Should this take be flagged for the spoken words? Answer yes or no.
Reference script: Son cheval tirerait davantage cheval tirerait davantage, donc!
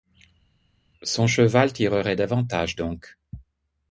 yes